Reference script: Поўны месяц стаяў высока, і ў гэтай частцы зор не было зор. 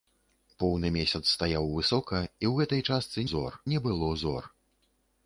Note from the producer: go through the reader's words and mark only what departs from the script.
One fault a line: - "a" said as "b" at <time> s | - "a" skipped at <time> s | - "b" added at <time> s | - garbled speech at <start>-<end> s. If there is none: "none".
none